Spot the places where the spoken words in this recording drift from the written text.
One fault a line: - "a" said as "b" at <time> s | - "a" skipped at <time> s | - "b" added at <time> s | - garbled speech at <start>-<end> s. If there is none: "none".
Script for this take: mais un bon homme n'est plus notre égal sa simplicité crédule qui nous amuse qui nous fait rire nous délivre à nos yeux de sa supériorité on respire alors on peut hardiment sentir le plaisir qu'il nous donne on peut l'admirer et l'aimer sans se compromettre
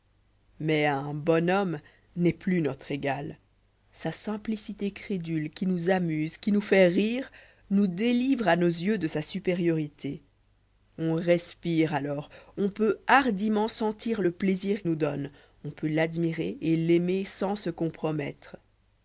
- "qu'il" skipped at 14.8 s